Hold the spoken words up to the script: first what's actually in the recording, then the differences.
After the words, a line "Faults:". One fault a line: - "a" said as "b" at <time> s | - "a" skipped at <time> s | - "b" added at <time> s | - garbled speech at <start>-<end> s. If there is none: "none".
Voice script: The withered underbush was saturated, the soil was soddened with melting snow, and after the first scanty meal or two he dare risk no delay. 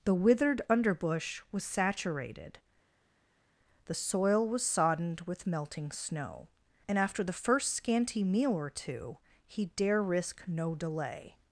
The withered underbush was saturated, the soil was soddened with melting snow, and after the first scanty meal or two he dare risk no delay.
Faults:
none